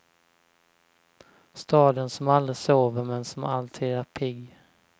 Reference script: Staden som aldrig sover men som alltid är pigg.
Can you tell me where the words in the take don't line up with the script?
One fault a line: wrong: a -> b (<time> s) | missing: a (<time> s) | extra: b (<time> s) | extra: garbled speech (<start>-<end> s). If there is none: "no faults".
no faults